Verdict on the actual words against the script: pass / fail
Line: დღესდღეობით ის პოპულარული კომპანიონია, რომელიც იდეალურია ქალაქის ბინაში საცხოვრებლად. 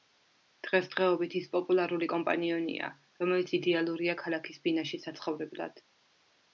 pass